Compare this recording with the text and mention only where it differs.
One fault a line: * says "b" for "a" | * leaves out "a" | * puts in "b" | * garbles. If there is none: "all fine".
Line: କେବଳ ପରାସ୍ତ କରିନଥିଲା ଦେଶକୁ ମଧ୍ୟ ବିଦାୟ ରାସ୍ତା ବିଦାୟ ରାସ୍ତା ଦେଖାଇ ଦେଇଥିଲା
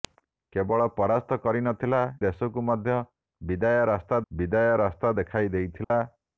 all fine